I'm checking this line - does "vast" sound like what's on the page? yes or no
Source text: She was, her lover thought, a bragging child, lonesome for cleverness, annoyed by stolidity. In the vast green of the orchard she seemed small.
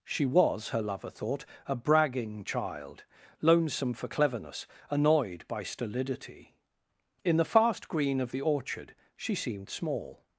no